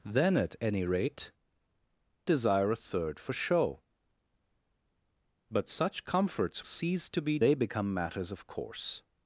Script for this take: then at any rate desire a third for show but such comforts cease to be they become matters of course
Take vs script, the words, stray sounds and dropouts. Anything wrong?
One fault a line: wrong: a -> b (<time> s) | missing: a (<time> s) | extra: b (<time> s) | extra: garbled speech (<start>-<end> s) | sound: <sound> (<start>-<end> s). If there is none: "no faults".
no faults